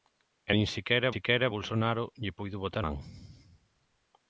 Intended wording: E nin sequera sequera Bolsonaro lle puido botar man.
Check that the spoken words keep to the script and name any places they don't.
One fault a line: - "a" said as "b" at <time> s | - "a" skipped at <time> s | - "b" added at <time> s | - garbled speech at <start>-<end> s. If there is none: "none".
none